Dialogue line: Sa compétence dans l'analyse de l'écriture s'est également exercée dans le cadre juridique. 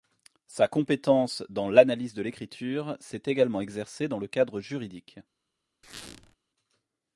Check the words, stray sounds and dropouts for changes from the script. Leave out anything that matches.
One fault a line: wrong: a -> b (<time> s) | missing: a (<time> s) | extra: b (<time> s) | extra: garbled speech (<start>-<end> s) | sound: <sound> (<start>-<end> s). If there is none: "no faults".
sound: squeak (5.8-6.4 s)